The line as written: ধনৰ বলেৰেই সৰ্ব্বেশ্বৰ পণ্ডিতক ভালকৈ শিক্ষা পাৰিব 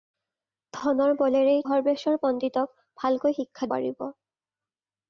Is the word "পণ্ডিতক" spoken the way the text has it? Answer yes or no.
yes